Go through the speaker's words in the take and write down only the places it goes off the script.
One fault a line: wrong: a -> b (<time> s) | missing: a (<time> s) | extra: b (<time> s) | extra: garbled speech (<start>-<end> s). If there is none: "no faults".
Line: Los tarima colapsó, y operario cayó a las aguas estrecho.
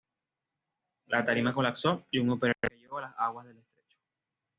wrong: Los -> La (1.1 s)
extra: un (2.2 s)
extra: del (3.5 s)